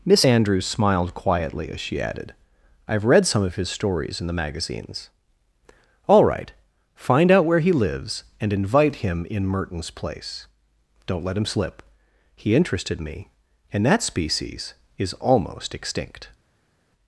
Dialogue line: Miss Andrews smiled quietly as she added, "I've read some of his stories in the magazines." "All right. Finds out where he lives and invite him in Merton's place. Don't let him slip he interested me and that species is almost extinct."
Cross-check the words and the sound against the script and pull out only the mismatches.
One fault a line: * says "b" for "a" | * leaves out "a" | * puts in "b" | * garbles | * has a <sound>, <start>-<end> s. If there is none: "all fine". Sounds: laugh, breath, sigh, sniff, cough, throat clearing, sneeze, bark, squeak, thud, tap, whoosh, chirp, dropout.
* says "Find" for "Finds"